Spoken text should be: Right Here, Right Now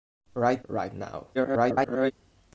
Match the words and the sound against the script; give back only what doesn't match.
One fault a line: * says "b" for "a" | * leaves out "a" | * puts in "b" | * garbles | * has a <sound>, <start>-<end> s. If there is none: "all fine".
* leaves out "Here"
* garbles